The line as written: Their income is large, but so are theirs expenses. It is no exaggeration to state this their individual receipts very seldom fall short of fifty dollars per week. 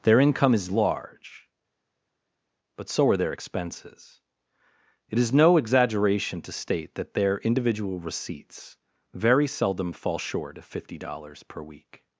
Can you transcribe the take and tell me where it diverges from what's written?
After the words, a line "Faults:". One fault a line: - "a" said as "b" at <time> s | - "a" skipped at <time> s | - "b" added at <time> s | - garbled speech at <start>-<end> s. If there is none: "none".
Their income is large, but so are their expenses. It is no exaggeration to state that their individual receipts very seldom fall short of fifty dollars per week.
Faults:
- "theirs" said as "their" at 3.2 s
- "this" said as "that" at 7.0 s